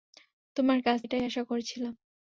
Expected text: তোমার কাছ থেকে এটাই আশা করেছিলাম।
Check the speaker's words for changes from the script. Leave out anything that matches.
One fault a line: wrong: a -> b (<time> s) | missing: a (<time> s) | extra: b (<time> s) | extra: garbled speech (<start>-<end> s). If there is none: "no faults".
missing: থেকে (1.0 s)